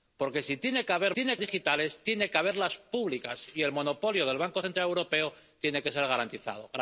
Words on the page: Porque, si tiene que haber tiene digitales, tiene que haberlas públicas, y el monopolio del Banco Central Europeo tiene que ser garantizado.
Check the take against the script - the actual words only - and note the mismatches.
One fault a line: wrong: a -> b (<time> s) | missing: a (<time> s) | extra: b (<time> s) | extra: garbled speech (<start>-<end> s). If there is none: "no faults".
no faults